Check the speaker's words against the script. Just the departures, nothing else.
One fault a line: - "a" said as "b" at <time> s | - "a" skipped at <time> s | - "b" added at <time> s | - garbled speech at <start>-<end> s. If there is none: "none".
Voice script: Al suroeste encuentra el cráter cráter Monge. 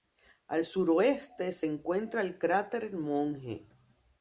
- "se" added at 1.5 s
- "cráter" skipped at 2.9 s